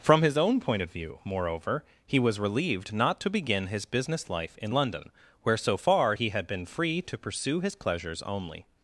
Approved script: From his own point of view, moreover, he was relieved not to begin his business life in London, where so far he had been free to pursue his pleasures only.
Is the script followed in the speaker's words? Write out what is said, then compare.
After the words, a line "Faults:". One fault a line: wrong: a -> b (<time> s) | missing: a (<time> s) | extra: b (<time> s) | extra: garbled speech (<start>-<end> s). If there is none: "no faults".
From his own point of view, moreover, he was relieved not to begin his business life in London, where so far he had been free to pursue his pleasures only.
Faults:
no faults